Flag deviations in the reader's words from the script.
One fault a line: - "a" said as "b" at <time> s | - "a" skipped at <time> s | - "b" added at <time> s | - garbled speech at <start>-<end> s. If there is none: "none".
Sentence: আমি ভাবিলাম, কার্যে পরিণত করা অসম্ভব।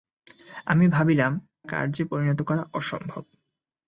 none